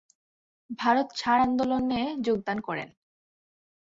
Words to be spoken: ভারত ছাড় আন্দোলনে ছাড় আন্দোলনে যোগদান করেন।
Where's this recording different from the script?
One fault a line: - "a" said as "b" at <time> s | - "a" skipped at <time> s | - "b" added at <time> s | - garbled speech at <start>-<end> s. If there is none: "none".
- "ছাড় আন্দোলনে" skipped at 2.0 s